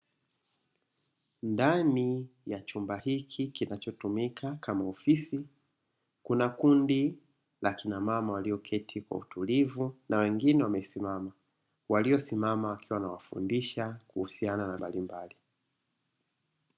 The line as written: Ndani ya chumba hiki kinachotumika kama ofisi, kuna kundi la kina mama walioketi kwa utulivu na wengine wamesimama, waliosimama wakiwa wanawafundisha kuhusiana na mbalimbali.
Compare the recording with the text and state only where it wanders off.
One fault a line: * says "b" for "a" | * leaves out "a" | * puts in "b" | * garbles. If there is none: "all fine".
all fine